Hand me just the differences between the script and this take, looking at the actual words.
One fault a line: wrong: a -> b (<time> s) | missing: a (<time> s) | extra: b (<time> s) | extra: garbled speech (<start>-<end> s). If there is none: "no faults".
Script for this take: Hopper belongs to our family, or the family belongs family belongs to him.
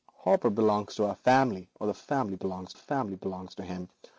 no faults